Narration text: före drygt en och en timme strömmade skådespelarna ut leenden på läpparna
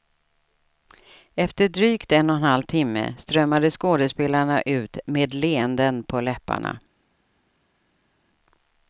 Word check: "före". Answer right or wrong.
wrong